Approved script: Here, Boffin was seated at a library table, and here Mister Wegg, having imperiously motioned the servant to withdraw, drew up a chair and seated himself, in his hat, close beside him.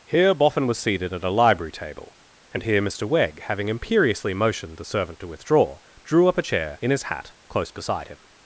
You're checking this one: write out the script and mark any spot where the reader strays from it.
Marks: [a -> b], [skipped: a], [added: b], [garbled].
Here, Boffin was seated at a library table, and here Mister Wegg, having imperiously motioned the servant to withdraw, drew up a chair [skipped: and seated himself,] in his hat, close beside him.